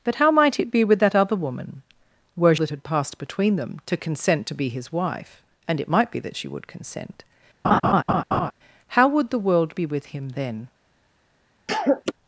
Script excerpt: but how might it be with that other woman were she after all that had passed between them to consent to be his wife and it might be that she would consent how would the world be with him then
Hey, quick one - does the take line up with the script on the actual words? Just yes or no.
no